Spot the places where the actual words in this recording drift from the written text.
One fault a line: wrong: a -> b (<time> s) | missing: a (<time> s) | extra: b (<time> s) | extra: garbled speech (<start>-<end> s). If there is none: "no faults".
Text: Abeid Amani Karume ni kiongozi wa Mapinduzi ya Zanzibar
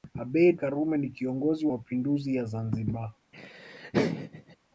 missing: Amani (0.6 s)
missing: wa (1.7 s)